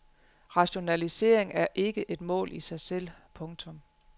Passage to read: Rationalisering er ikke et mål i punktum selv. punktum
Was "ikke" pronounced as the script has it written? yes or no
yes